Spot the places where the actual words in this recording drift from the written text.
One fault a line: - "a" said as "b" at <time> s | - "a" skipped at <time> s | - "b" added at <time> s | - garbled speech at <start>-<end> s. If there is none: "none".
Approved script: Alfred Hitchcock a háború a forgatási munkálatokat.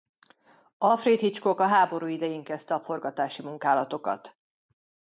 - "idején kezdte" added at 2.1 s